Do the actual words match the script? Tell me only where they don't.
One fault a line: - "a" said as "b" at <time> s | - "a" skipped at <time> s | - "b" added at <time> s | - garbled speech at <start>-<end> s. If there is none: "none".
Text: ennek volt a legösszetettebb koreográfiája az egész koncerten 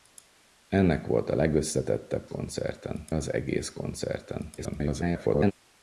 - "koreográfiája" said as "koncerten" at 2.2 s
- garbled speech at 4.6-5.5 s